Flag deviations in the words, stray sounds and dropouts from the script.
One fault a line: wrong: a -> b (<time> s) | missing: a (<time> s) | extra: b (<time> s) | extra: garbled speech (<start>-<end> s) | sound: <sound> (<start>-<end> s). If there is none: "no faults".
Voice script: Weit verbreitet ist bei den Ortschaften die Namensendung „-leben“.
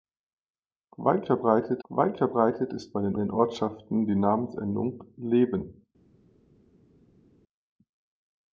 extra: weit verbreitet (1.9 s)
extra: den (3.2 s)